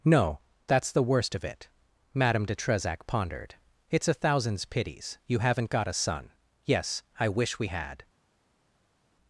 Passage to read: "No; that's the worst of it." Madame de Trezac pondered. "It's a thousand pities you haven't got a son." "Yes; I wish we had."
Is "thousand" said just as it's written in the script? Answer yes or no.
no